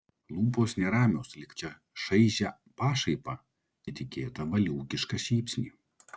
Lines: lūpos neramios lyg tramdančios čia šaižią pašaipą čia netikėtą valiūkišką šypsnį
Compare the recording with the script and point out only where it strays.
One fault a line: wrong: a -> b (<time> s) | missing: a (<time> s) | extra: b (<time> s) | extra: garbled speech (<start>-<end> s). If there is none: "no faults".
missing: tramdančios (1.5 s)
missing: čia (3.4 s)